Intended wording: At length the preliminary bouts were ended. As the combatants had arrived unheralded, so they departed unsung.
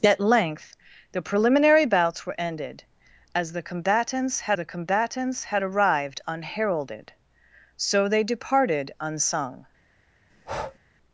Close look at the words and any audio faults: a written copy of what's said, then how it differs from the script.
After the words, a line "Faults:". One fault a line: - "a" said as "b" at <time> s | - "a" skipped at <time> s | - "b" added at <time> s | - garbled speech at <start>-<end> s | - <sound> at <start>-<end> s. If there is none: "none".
At length the preliminary bouts were ended. As the combatants had the combatants had arrived unheralded, so they departed unsung.
Faults:
- "the combatants had" added at 4.5 s
- breath at 10.3-10.8 s